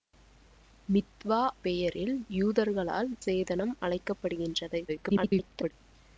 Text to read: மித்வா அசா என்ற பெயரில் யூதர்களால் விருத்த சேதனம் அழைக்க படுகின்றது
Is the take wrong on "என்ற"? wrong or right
wrong